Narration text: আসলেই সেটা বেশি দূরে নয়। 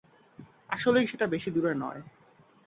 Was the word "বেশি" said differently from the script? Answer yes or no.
no